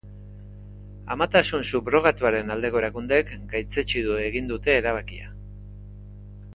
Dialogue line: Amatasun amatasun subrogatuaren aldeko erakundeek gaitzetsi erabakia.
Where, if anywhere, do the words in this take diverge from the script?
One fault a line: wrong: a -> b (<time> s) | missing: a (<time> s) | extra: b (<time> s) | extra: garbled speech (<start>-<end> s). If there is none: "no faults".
missing: amatasun (1.7 s)
extra: egin dute (4.3 s)